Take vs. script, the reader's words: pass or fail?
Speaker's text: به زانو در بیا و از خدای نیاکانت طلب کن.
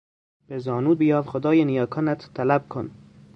fail